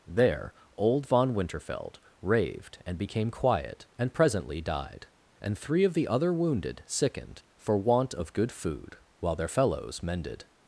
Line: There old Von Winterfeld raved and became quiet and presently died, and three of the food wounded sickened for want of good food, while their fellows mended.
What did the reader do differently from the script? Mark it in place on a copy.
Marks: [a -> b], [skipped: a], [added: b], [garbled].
There old Von Winterfeld raved and became quiet and presently died, and three of the [food -> other] wounded sickened for want of good food, while their fellows mended.